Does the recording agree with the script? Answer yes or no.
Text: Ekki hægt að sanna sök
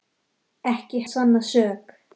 no